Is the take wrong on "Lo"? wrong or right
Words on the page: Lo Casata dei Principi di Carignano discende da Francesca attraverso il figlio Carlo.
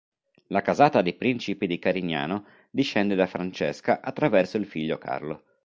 wrong